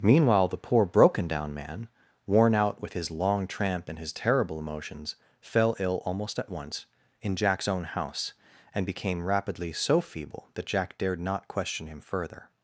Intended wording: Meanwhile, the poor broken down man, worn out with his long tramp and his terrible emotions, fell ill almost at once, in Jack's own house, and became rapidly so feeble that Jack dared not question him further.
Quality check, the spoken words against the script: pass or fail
pass